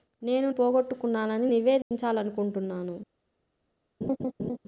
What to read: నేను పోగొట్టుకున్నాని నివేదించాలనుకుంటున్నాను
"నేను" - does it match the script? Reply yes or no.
yes